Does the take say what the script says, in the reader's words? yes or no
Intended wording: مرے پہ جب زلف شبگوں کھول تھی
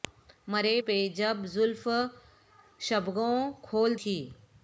yes